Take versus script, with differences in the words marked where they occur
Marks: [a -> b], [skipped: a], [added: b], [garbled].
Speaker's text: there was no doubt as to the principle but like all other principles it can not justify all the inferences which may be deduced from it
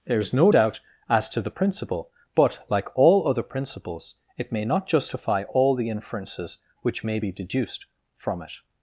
there [was -> is] no doubt as to the principle but like all other principles it [can -> may] not justify all the inferences which may be deduced from it